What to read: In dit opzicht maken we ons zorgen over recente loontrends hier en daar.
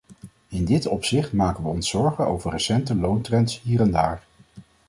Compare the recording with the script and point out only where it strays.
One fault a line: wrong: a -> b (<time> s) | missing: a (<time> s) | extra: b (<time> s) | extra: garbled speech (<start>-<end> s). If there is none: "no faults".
no faults